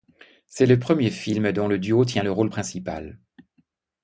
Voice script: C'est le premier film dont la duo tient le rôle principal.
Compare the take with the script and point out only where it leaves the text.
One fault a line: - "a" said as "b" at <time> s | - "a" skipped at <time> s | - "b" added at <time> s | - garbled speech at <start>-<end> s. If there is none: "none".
- "la" said as "le" at 1.7 s